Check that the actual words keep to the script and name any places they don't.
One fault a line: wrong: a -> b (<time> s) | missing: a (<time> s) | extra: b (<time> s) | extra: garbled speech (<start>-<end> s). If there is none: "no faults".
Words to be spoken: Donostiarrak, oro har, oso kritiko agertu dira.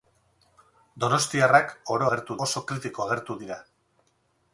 wrong: har -> agertu (2.1 s)